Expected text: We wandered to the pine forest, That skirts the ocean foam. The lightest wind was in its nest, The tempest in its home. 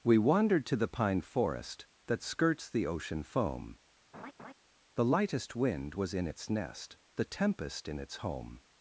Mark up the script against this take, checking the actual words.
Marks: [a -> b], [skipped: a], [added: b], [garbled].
We wandered to the pine forest, That skirts the ocean foam. The lightest wind was in its nest, The tempest in its home.